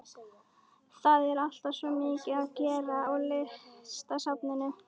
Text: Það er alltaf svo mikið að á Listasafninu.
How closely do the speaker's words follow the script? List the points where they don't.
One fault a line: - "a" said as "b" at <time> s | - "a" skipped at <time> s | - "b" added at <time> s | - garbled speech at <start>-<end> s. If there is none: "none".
- "gera" added at 2.6 s